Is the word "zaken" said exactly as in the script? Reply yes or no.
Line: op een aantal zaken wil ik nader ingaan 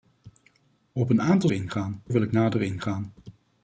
no